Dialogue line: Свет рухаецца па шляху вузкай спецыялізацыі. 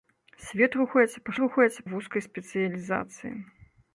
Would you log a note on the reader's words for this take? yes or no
yes